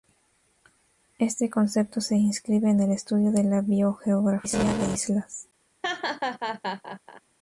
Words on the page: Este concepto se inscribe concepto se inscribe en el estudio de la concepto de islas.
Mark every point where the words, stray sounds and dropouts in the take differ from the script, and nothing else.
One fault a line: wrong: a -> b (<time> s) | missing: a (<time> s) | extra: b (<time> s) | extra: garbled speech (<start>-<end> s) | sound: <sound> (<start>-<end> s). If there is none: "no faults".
missing: concepto se inscribe (2.7 s)
wrong: concepto -> biogeografía (3.6 s)
sound: laugh (5.8-7.2 s)